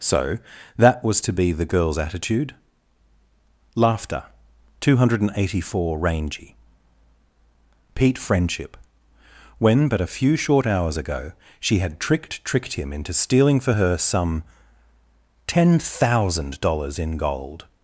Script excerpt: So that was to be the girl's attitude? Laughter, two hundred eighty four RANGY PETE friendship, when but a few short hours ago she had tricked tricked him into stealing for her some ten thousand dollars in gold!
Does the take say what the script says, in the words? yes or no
yes